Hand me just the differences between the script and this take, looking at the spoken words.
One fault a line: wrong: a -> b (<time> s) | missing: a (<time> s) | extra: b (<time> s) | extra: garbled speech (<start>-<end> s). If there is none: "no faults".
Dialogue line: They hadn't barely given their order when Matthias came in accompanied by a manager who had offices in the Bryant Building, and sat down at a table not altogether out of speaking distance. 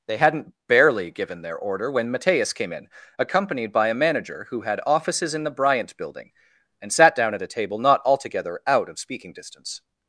no faults